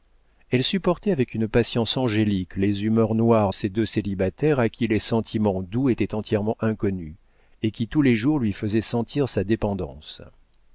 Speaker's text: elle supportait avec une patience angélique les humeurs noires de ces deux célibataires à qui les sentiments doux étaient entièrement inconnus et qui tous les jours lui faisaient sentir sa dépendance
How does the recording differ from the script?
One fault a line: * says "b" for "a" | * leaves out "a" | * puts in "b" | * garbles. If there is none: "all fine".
* leaves out "de"